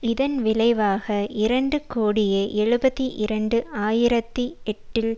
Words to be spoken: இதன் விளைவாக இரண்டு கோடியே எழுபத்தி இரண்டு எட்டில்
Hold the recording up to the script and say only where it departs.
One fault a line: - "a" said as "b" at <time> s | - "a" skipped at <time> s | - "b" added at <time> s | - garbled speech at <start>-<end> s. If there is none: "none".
- "ஆயிரத்தி" added at 3.8 s